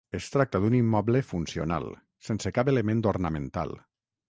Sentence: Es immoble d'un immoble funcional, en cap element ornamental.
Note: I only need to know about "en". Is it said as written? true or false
false